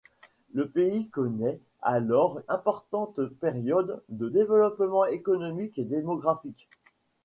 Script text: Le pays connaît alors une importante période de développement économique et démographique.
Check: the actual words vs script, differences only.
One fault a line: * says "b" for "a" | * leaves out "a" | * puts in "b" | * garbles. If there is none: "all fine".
* leaves out "une"